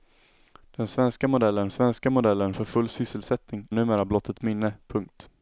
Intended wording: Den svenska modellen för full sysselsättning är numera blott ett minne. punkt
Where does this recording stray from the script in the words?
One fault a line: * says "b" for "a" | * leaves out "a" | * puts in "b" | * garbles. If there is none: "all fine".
* puts in "svenska modellen"
* leaves out "är"